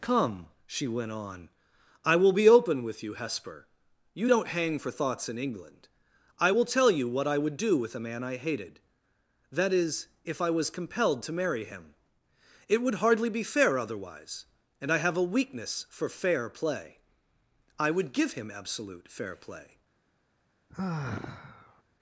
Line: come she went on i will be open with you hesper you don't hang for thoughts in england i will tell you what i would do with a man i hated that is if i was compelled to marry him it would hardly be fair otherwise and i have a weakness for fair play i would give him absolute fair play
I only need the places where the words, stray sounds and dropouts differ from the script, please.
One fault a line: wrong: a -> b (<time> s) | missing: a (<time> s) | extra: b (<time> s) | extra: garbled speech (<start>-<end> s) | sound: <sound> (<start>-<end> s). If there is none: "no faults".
sound: sigh (20.7-21.8 s)